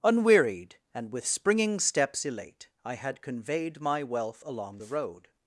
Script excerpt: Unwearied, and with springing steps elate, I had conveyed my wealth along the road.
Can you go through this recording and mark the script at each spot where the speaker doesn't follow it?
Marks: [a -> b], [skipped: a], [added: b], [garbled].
Unwearied, and with springing steps elate, I had conveyed my wealth along the road.